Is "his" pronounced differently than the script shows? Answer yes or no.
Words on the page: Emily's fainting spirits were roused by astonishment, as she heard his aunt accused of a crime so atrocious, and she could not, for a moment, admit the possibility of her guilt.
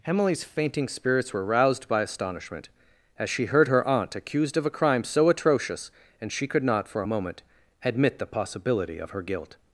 yes